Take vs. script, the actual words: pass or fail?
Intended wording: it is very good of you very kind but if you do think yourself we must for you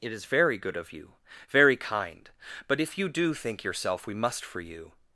pass